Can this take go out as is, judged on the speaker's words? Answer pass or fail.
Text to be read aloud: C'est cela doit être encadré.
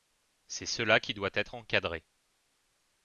fail